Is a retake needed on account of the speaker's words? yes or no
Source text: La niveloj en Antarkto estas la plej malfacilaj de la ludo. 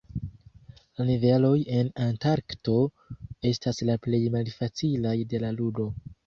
no